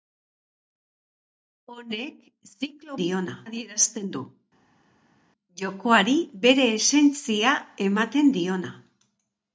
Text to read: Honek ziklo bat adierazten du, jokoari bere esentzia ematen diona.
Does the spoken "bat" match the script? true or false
false